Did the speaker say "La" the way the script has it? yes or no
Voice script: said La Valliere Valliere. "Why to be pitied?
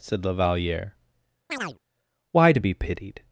yes